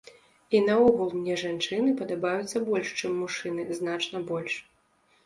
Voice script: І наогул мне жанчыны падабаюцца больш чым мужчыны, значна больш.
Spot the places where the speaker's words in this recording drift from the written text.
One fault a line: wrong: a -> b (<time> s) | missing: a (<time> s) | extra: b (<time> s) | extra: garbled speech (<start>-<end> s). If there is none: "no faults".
no faults